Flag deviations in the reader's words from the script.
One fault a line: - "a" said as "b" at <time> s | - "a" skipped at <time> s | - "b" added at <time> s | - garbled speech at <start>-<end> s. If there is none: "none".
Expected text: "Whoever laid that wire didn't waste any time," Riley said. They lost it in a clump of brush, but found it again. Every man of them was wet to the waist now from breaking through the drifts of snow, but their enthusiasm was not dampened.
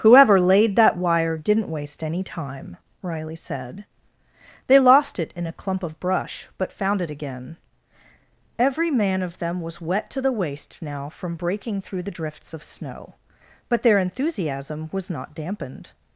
none